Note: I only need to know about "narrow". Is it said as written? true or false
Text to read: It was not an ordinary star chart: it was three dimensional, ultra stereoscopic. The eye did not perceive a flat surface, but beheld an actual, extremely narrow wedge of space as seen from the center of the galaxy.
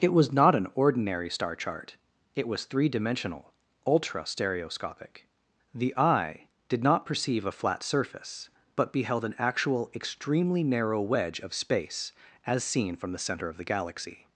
true